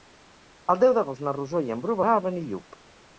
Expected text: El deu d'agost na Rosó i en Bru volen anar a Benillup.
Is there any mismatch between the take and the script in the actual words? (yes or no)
yes